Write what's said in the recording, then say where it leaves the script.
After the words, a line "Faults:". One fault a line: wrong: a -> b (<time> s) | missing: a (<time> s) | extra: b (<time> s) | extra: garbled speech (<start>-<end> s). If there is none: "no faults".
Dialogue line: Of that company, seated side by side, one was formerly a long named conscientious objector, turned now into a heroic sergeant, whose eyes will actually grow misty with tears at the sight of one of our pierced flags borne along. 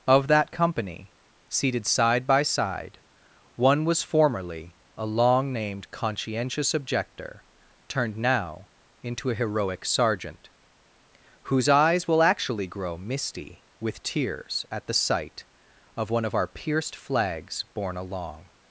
Of that company, seated side by side, one was formerly a long named conscientious objector, turned now into a heroic sergeant, whose eyes will actually grow misty with tears at the sight of one of our pierced flags borne along.
Faults:
no faults